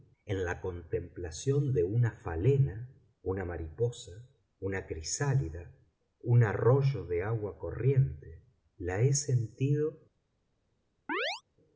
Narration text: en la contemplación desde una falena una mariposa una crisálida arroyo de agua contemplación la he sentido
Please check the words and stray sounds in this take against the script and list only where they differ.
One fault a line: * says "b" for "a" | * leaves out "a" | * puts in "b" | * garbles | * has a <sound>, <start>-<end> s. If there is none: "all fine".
* says "de" for "desde"
* puts in "un"
* says "corriente" for "contemplación"
* has a chirp, 11.1-11.4 s